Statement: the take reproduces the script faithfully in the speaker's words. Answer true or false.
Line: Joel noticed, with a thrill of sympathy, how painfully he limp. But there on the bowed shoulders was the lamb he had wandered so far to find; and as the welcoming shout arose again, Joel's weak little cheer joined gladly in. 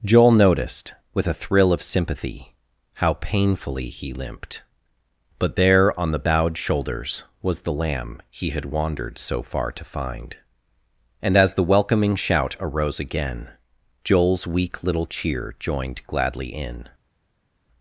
false